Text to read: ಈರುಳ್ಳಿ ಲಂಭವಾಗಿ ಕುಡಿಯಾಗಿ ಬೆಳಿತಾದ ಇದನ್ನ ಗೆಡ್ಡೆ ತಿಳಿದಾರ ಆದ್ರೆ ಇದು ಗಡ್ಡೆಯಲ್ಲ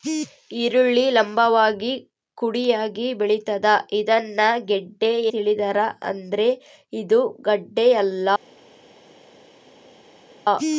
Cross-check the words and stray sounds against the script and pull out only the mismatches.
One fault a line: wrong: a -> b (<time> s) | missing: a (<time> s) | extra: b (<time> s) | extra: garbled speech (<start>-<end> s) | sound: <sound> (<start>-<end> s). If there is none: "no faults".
no faults